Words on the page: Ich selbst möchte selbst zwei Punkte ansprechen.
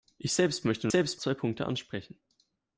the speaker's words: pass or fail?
pass